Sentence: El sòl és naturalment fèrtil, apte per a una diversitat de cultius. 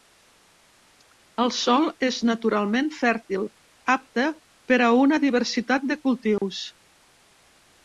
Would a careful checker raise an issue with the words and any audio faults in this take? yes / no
yes